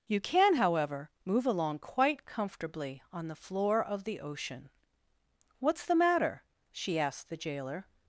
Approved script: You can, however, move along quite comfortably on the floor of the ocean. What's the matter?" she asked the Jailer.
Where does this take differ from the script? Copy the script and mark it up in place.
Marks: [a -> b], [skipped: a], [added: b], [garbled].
You can, however, move along quite comfortably on the floor of the ocean. What's the matter?" she asked the Jailer.